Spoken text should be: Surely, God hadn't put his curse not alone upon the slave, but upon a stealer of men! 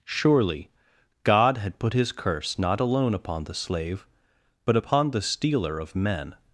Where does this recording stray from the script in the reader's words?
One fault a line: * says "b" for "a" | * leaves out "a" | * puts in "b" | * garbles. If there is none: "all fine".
* says "had" for "hadn't"
* says "the" for "a"